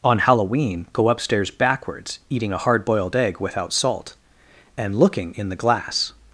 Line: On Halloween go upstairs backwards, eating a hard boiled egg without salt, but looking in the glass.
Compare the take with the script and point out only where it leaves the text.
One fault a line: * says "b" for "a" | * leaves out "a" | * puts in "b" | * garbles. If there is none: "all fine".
* says "and" for "but"